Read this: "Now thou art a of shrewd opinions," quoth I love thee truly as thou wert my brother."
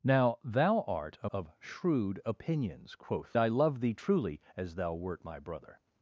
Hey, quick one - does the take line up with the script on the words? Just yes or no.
yes